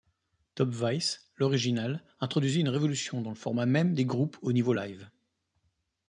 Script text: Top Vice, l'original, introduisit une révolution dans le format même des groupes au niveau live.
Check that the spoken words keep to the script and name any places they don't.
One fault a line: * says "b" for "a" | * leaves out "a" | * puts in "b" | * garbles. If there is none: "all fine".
all fine